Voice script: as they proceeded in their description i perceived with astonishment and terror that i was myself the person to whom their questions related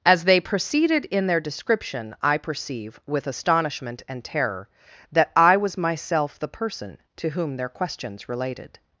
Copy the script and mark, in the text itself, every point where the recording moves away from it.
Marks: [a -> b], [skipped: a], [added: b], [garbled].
as they proceeded in their description i [perceived -> perceive] with astonishment and terror that i was myself the person to whom their questions related